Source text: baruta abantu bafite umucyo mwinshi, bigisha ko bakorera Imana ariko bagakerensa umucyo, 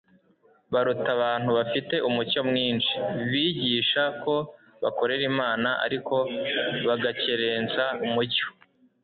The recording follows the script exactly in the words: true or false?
true